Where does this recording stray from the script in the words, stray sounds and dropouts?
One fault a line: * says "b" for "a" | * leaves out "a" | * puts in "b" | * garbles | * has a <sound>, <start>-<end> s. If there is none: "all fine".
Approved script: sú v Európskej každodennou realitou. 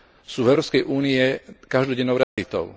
* puts in "únii"
* has a dropout, 2.2-2.4 s